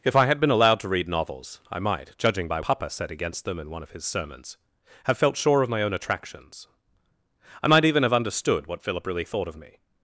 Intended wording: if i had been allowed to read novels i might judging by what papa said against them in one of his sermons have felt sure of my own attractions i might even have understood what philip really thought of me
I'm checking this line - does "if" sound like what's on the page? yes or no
yes